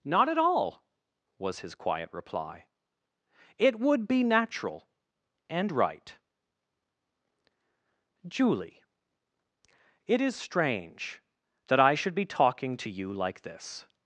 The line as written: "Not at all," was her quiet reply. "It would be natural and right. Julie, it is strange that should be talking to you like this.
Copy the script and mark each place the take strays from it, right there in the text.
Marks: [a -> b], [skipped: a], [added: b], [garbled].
"Not at all," was [her -> his] quiet reply. "It would be natural and right. Julie, it is strange that [added: I] should be talking to you like this.